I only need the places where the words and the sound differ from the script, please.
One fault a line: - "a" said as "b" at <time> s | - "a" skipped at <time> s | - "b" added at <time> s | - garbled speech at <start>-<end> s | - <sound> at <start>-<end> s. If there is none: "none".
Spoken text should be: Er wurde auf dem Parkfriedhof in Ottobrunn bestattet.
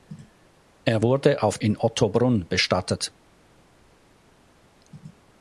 - "dem Parkfriedhof" skipped at 1.6 s